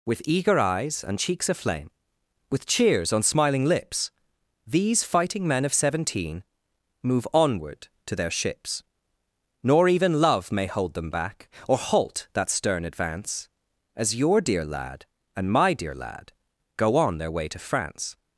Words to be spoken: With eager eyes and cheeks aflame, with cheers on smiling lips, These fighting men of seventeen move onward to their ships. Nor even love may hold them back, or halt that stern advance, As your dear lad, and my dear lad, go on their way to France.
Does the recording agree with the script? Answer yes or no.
yes